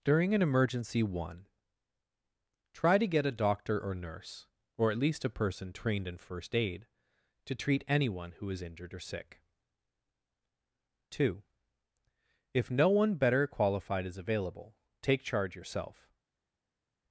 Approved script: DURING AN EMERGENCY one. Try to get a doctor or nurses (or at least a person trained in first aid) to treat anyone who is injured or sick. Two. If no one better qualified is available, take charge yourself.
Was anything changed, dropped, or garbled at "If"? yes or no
no